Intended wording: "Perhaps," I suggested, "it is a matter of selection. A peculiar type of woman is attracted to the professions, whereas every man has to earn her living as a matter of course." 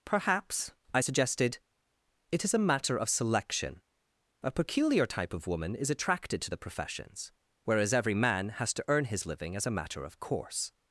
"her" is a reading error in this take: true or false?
true